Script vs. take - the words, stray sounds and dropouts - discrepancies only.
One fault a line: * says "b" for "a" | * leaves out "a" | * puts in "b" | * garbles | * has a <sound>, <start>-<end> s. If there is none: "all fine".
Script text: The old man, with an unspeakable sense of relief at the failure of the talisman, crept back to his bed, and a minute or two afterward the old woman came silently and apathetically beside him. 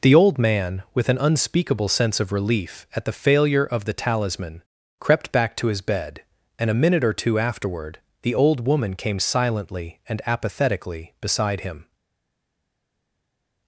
all fine